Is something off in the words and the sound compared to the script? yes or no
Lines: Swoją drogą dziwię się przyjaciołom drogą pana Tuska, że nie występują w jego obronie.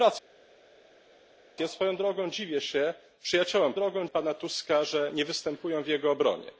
no